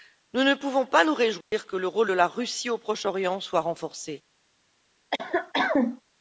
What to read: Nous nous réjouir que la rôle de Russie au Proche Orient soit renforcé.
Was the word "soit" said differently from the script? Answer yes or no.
no